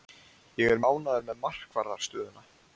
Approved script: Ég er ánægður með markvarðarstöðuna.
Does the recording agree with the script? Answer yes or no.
yes